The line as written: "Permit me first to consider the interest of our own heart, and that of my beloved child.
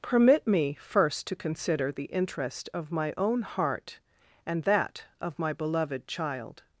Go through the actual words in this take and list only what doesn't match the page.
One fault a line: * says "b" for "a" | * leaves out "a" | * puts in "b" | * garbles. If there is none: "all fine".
* says "my" for "our"